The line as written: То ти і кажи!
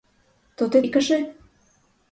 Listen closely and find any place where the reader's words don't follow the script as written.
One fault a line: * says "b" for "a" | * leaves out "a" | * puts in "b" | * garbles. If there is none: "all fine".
all fine